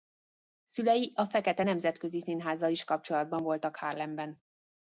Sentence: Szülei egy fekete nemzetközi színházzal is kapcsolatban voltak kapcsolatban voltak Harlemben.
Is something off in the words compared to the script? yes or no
yes